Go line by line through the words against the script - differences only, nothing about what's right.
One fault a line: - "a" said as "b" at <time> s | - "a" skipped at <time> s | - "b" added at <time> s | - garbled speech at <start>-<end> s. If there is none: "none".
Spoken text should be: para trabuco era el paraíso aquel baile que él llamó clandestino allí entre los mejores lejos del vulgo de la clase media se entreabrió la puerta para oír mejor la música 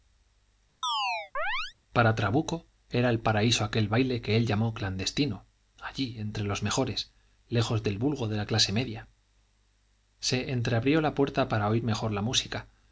none